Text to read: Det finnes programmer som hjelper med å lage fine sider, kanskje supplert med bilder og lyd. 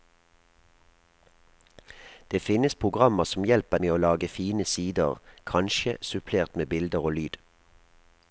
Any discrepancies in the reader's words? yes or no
no